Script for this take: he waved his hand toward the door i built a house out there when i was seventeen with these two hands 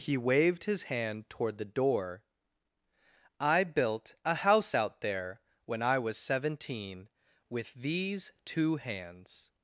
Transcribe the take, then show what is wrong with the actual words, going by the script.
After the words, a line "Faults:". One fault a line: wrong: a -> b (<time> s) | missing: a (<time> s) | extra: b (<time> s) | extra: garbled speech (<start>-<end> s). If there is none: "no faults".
he waved his hand toward the door i built a house out there when i was seventeen with these two hands
Faults:
no faults